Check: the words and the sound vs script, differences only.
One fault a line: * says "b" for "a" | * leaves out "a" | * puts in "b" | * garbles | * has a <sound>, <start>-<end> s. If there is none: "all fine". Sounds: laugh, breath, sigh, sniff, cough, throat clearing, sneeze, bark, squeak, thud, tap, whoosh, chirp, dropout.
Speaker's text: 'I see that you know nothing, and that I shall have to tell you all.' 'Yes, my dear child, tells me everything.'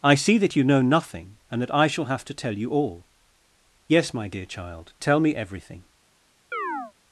* says "tell" for "tells"
* has a chirp, 6.5-6.9 s